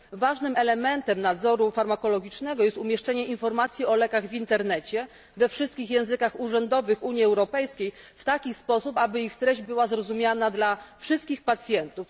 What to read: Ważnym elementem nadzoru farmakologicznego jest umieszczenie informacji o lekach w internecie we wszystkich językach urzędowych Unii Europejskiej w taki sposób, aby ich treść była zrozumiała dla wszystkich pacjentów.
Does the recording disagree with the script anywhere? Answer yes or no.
no